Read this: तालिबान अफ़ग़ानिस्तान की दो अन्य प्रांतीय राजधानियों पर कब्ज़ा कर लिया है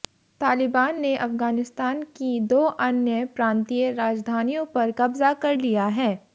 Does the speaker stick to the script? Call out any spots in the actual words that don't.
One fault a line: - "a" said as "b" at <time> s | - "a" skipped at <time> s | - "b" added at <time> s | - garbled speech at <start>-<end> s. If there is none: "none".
- "ने" added at 1.0 s